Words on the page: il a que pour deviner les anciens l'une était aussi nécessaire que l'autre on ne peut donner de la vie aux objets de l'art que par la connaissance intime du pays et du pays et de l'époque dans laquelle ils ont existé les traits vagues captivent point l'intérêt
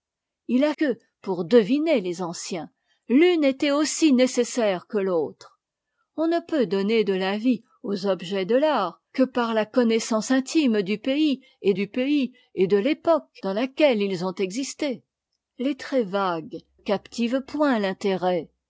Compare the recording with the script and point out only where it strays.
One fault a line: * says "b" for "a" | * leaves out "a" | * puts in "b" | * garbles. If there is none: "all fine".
all fine